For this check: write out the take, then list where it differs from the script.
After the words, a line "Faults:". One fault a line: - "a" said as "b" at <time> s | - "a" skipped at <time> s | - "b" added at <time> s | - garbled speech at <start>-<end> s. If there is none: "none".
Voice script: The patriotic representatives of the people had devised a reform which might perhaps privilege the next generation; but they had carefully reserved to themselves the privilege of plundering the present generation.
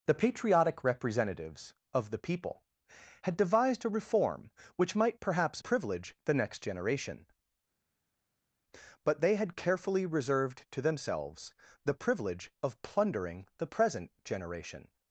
The patriotic representatives of the people had devised a reform which might perhaps privilege the next generation; but they had carefully reserved to themselves the privilege of plundering the present generation.
Faults:
none